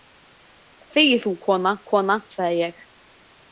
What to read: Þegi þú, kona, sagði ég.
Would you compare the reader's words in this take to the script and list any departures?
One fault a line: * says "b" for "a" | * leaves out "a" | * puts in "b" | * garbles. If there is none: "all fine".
* puts in "kona"